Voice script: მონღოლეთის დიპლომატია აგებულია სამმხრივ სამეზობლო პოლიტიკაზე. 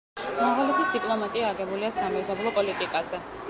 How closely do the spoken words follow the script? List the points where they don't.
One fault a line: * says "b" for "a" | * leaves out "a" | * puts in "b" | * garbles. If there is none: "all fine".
* leaves out "სამმხრივ"